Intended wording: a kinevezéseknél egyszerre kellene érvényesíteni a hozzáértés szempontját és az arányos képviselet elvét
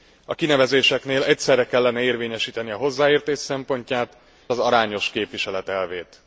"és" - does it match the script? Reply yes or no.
no